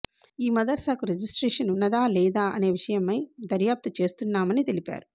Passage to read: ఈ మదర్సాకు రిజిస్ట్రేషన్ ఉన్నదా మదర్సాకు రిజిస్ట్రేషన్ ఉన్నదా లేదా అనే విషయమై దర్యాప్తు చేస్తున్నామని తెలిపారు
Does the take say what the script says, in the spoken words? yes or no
no